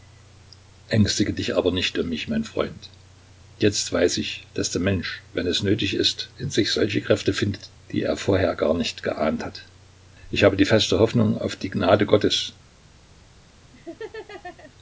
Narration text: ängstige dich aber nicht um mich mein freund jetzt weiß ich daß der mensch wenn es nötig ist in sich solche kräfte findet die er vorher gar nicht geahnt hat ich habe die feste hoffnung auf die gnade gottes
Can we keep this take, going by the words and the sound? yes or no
no